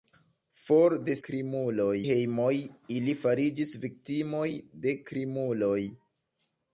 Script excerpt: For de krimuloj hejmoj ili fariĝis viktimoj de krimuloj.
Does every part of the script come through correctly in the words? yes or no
yes